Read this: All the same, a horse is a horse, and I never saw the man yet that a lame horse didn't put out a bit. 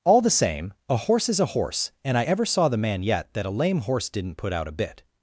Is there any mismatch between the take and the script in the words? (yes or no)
yes